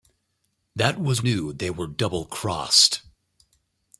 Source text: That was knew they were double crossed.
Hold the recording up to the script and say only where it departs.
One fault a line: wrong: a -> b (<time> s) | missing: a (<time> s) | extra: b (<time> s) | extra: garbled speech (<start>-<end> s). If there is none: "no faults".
no faults